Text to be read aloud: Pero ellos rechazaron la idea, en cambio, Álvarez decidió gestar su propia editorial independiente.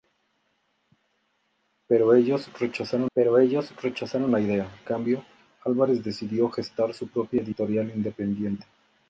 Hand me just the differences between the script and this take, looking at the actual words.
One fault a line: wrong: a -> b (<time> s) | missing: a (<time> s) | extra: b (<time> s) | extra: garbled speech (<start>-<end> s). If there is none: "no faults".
extra: pero ellos rechazaron (3.1 s)
missing: en (4.7 s)